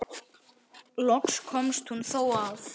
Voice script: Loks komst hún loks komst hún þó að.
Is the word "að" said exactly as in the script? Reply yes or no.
yes